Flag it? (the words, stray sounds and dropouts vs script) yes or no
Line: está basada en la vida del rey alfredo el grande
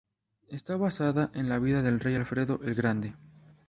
no